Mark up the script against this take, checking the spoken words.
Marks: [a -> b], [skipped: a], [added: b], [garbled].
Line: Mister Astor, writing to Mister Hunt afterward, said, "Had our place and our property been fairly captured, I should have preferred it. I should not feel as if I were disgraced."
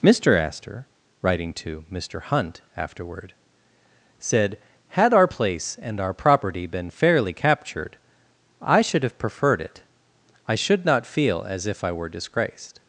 Mister Astor, writing to Mister Hunt afterward, said, "Had our place and our property been fairly captured, I should have preferred it. I should not feel as if I were disgraced."